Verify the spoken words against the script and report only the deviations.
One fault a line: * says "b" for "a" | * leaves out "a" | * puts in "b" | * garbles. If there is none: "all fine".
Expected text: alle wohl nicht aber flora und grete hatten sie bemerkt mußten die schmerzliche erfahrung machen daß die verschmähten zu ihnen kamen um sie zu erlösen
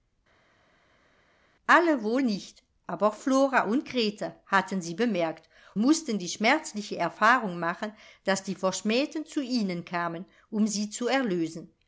all fine